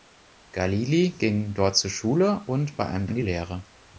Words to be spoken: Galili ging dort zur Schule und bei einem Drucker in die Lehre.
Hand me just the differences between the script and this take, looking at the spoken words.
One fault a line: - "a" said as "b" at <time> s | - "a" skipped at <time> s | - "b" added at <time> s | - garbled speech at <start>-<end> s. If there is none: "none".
- "Drucker" skipped at 3.1 s